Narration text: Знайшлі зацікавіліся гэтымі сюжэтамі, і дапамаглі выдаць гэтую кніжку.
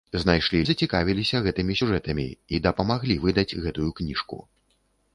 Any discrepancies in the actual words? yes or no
no